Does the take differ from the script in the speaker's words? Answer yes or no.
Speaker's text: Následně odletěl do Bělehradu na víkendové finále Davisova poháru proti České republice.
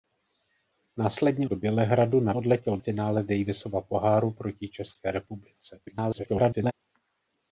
yes